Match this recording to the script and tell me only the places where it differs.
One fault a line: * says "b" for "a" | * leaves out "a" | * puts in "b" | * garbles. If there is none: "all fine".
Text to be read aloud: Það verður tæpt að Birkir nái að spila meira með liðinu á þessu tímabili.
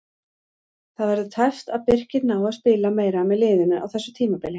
all fine